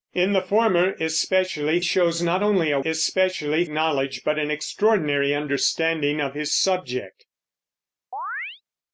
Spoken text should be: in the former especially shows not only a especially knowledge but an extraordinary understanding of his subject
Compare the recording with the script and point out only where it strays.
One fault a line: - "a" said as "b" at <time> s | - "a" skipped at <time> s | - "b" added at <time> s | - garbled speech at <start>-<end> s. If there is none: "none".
none